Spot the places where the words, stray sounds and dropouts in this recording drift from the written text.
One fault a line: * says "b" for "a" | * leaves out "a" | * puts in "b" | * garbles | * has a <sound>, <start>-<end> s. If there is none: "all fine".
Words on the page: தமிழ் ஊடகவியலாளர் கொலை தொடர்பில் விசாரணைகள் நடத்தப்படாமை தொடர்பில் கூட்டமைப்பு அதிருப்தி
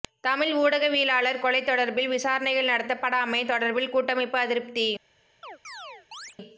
* has a chirp, 5.4-6.4 s